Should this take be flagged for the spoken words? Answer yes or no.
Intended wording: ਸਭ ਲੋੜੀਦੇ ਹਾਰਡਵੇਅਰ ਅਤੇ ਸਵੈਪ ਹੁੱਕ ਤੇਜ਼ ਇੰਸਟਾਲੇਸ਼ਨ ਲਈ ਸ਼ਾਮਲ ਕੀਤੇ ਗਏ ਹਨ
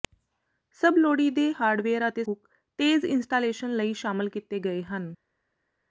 yes